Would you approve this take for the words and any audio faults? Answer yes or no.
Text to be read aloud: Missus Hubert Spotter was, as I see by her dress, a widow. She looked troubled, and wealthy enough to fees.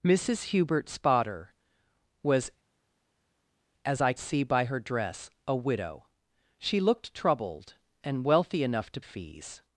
yes